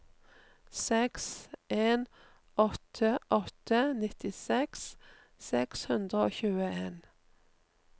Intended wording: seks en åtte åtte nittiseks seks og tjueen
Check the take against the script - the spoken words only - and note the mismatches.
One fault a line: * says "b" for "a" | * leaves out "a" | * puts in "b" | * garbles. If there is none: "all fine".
* puts in "hundre"